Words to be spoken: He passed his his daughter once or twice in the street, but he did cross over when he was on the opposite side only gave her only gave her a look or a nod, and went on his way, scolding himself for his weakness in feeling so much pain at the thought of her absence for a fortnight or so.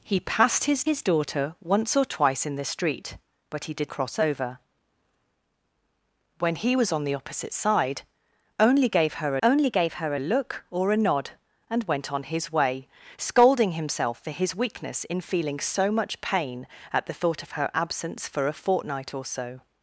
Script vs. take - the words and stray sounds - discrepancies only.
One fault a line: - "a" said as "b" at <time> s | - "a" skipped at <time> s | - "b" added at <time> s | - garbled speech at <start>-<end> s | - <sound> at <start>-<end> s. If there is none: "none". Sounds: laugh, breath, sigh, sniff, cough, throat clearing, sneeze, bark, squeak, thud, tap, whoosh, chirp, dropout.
none